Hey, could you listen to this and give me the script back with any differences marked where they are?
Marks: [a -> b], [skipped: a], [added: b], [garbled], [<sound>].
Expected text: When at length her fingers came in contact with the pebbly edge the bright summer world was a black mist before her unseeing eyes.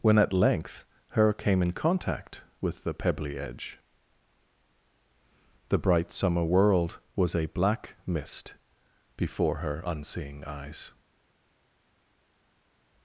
When at length her [skipped: fingers] came in contact with the pebbly edge the bright summer world was a black mist before her unseeing eyes.